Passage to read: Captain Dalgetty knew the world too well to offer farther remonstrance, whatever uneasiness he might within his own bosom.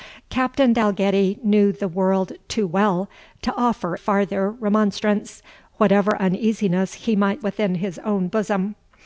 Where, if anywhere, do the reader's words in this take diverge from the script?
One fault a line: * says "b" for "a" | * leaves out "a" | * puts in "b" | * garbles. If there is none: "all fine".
all fine